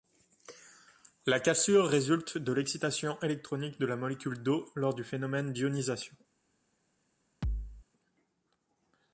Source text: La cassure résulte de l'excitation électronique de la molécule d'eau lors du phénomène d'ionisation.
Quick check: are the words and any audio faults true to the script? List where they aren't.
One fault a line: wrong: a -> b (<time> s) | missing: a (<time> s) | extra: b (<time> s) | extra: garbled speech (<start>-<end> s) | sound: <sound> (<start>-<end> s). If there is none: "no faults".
sound: thud (7.4-7.9 s)